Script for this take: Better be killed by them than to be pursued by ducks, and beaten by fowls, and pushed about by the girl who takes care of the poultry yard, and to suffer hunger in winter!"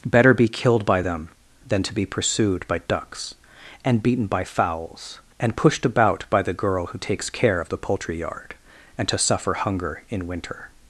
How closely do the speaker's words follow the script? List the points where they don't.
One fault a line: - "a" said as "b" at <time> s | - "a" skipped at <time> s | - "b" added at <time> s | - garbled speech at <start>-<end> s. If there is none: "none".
none